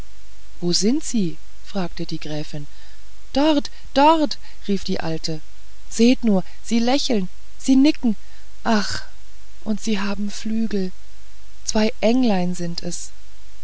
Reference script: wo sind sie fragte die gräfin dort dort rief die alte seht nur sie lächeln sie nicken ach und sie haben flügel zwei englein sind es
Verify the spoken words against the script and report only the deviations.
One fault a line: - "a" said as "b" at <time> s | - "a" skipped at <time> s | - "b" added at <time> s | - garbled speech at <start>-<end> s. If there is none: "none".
none